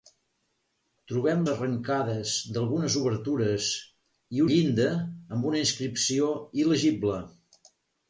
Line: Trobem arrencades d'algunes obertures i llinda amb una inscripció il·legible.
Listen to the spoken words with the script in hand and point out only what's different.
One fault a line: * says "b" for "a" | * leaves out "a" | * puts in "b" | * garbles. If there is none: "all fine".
all fine